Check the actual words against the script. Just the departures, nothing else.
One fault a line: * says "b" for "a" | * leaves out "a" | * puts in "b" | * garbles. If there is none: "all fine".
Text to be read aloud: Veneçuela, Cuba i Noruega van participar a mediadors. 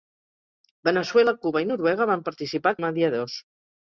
all fine